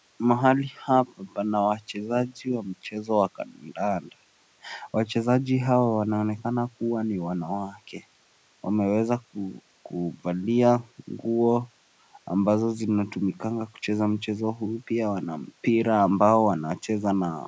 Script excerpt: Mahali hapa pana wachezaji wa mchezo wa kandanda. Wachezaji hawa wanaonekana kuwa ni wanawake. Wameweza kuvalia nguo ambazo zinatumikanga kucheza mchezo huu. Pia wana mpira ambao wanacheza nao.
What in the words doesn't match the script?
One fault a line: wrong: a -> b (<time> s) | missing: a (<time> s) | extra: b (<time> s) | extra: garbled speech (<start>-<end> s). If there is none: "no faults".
no faults